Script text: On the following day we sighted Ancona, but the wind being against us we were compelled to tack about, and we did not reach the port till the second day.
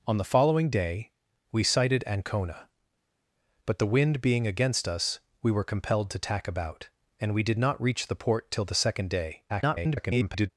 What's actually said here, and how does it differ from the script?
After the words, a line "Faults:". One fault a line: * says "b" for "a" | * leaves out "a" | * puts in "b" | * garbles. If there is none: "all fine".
On the following day we sighted Ancona, but the wind being against us we were compelled to tack about, and we did not reach the port till the second day. [garbled]
Faults:
* garbles